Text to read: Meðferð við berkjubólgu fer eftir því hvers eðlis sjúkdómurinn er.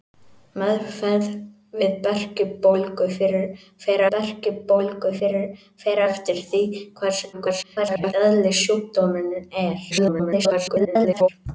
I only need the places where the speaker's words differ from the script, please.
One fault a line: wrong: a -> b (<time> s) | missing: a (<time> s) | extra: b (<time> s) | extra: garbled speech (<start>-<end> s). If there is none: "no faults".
extra: berkjubólgu fer (4.1 s)
extra: garbled speech (7.3-8.1 s)
extra: garbled speech (9.9-11.3 s)